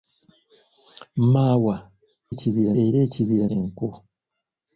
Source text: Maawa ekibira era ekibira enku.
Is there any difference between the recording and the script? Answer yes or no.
no